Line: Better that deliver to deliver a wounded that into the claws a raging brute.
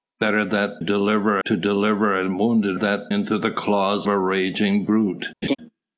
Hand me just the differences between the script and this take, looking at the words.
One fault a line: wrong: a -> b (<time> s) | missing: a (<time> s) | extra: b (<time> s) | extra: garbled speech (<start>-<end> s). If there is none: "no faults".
no faults